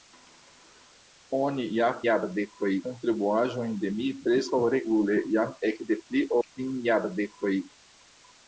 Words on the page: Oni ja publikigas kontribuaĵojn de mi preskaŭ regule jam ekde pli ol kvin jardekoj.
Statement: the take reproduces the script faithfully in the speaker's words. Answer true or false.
false